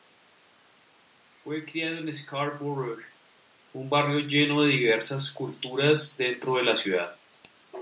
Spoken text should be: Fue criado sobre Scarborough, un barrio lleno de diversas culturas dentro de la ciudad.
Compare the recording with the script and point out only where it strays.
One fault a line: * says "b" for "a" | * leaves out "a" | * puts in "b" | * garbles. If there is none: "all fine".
* says "en" for "sobre"